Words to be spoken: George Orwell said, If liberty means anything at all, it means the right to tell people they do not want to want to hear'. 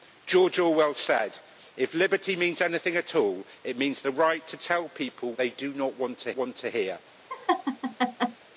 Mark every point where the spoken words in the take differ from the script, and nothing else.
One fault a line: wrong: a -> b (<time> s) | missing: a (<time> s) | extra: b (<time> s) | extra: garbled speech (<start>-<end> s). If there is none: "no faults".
no faults